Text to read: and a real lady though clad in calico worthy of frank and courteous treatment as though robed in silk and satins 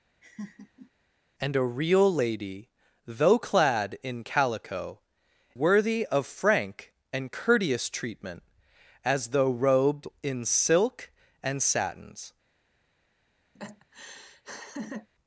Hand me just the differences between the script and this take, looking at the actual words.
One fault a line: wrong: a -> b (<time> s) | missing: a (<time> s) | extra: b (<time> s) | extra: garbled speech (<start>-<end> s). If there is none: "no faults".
no faults